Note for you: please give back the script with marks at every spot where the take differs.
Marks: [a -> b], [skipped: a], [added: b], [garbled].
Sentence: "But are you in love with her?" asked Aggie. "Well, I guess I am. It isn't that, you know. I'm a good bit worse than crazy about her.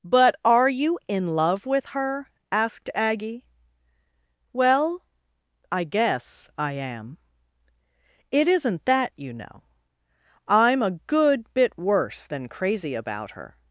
"But are you in love with her?" asked Aggie. "Well, I guess I am. It isn't that, you know. I'm a good bit worse than crazy about her.